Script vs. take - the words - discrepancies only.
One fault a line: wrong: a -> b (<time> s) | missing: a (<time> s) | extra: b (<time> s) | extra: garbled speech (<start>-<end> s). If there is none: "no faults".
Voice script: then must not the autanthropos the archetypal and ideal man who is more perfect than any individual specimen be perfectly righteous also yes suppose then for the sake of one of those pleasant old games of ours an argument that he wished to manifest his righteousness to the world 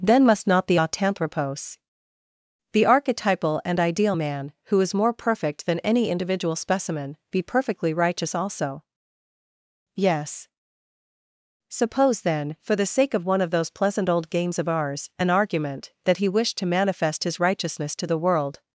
no faults